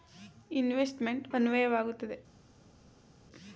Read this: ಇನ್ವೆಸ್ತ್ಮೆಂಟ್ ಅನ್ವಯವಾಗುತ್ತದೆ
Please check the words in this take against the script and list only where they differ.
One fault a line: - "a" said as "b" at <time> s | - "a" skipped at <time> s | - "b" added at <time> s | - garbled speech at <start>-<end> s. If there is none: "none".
none